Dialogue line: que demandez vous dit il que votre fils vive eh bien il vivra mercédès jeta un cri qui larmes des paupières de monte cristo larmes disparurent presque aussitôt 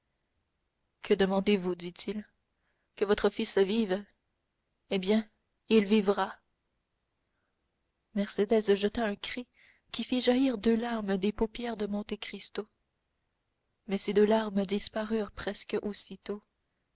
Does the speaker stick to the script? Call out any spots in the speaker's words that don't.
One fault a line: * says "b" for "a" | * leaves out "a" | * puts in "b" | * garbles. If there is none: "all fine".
* puts in "fit jaillir deux"
* puts in "mais ces deux"